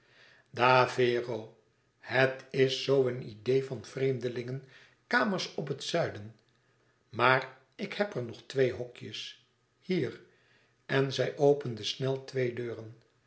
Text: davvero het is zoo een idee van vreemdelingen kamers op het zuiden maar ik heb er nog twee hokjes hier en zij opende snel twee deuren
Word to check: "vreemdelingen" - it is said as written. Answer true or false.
true